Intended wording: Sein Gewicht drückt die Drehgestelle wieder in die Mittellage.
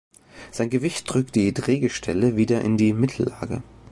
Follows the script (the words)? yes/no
yes